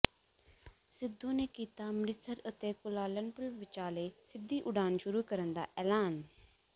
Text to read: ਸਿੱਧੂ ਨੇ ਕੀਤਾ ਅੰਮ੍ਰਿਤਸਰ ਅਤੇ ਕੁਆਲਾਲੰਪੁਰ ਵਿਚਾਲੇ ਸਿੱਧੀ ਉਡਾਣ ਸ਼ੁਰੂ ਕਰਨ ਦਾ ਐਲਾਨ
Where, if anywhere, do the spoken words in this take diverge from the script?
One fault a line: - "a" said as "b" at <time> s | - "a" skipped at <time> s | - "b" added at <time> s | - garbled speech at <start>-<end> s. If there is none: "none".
none